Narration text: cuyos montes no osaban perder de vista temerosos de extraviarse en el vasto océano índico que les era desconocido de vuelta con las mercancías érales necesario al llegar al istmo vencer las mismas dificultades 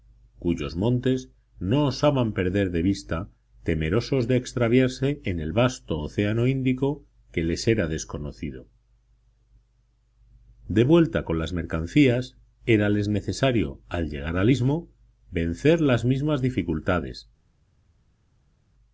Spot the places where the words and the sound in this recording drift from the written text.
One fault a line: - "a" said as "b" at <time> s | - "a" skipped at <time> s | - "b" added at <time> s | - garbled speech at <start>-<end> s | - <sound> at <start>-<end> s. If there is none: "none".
none